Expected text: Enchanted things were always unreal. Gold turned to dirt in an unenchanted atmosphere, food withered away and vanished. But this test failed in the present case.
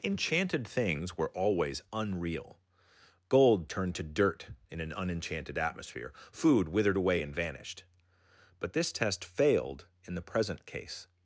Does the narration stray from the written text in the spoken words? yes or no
no